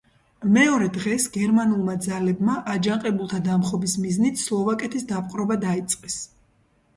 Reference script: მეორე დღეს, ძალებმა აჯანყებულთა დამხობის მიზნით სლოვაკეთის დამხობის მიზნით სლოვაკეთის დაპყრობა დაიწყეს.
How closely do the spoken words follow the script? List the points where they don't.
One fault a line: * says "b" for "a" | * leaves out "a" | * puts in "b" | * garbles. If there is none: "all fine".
* puts in "გერმანულმა"
* leaves out "დამხობის მიზნით სლოვაკეთის"